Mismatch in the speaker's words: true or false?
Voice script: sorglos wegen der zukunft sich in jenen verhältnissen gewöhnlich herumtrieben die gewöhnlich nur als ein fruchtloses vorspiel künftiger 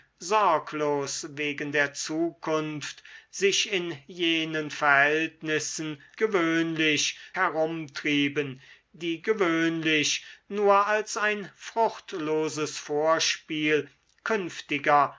false